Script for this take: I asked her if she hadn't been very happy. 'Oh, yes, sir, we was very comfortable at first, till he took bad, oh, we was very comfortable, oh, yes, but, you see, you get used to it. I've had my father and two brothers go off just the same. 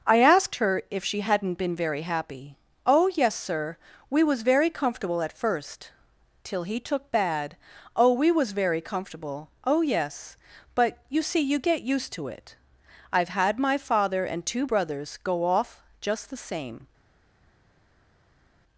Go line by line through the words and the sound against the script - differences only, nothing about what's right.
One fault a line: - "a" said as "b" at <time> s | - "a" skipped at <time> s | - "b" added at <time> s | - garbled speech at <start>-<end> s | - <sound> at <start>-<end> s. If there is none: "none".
none